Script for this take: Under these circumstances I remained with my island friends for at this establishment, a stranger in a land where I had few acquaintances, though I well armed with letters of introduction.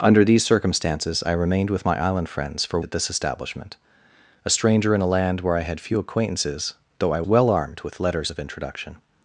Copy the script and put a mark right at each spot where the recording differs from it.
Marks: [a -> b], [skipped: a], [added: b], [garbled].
Under these circumstances I remained with my island friends for at this establishment, a stranger in a land where I had few acquaintances, though I well armed with letters of introduction.